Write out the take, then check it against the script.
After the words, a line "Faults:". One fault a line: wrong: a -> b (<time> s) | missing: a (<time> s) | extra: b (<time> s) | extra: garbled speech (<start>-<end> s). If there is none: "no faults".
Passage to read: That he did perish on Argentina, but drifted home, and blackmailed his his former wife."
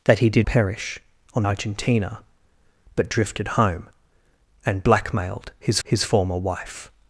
That he did perish on Argentina, but drifted home, and blackmailed his his former wife."
Faults:
no faults